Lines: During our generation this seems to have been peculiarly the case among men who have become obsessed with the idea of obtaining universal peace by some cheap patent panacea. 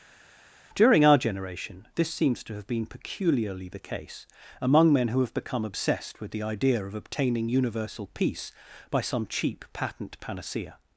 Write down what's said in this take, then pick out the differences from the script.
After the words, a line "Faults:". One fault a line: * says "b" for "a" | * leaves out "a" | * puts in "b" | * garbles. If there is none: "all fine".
During our generation this seems to have been peculiarly the case among men who have become obsessed with the idea of obtaining universal peace by some cheap patent panacea.
Faults:
all fine